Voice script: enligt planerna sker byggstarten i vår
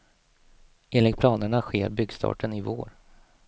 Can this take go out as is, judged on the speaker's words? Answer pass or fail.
pass